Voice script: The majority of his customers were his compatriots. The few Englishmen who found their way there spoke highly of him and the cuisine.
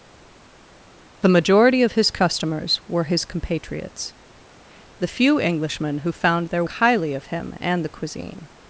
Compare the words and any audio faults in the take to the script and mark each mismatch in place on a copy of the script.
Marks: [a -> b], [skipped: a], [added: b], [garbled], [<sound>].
The majority of his customers were his compatriots. The few Englishmen who found their [skipped: way there spoke] highly of him and the cuisine.